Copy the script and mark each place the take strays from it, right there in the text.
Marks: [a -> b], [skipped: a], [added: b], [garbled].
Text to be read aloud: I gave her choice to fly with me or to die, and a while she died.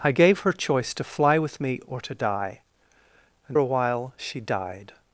I gave her choice to fly with me or to die, and a while she died.